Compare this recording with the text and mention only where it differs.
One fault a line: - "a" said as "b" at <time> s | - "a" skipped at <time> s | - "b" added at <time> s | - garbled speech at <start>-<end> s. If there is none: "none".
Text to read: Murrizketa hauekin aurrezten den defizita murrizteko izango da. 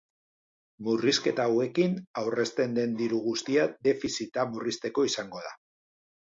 - "diru guztia" added at 3.0 s